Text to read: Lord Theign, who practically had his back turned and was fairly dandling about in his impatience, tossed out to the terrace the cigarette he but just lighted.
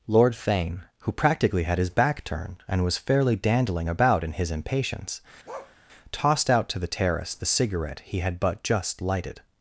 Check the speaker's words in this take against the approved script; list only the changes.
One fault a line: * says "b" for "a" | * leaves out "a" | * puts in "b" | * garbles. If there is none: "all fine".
* puts in "had"